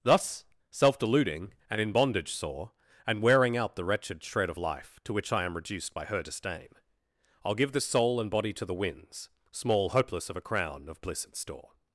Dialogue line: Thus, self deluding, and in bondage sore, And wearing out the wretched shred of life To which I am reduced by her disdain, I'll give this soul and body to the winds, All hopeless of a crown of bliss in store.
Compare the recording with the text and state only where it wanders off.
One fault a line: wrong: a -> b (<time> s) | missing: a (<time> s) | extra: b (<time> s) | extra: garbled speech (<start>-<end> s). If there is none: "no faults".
wrong: All -> Small (9.5 s)